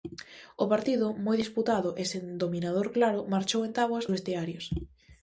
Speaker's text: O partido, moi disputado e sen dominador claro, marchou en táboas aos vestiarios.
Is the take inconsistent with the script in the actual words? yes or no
yes